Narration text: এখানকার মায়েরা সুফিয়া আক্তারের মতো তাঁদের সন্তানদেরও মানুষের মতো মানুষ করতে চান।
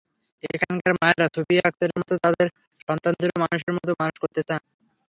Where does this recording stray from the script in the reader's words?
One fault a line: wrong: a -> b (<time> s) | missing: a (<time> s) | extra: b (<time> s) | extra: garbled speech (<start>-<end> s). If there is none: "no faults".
no faults